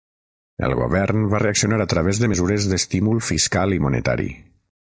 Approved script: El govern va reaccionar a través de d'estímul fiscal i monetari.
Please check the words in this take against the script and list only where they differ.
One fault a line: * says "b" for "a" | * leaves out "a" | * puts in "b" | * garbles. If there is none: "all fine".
* puts in "mesures"